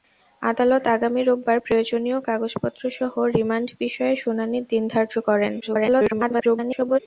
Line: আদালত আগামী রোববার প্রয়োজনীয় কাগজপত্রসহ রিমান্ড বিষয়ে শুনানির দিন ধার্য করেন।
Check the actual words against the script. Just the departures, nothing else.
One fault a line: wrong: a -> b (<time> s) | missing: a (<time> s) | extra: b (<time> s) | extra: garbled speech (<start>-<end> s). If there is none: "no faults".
extra: garbled speech (5.6-7.0 s)